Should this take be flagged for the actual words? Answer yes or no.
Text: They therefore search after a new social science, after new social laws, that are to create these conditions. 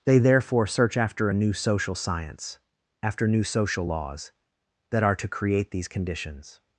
no